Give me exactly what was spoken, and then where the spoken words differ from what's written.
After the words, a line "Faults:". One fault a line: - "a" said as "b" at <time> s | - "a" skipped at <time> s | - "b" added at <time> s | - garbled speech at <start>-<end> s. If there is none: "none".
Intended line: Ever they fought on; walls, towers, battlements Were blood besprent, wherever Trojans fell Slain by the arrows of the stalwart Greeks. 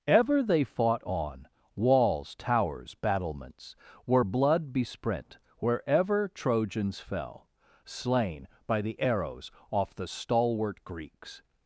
Ever they fought on; walls, towers, battlements Were blood besprent, wherever Trojans fell Slain by the arrows off the stalwart Greeks.
Faults:
- "of" said as "off" at 9.7 s